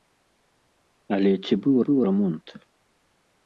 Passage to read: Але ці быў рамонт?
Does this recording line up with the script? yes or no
no